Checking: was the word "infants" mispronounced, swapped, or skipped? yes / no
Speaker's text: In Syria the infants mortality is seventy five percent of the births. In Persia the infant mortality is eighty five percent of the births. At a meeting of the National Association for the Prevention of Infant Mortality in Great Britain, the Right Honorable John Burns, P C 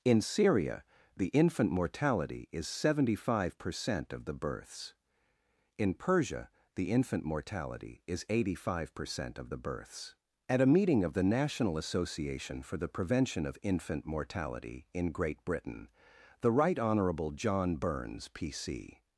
yes